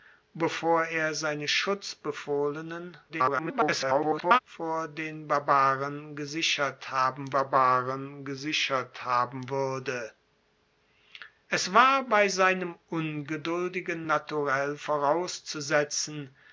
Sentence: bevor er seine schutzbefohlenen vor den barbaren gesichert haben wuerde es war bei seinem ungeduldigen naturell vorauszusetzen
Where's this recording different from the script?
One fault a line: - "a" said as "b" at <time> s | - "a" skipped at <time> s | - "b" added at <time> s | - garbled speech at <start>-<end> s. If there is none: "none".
- garbled speech at 3.1-4.4 s
- "barbaren gesichert haben" added at 7.3 s